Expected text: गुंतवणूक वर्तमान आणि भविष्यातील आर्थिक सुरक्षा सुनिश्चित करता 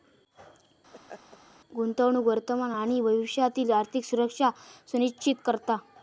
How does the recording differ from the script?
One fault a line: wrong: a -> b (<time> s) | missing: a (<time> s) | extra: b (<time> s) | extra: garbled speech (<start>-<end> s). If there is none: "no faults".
no faults